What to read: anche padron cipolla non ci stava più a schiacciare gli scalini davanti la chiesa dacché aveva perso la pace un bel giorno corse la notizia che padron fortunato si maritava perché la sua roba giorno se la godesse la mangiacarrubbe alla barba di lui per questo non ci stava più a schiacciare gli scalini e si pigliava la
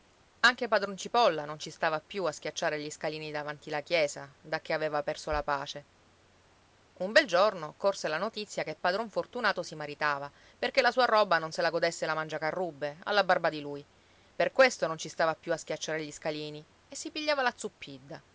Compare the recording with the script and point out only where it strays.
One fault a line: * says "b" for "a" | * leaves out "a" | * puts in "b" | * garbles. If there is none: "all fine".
* says "non" for "giorno"